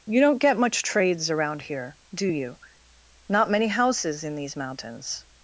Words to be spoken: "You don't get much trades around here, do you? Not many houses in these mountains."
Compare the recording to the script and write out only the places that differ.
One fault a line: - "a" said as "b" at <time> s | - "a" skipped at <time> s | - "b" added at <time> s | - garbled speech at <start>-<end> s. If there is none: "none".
none